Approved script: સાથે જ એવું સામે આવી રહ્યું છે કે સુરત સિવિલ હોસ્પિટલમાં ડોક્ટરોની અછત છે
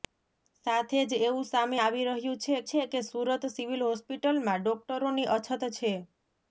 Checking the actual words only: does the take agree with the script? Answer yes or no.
no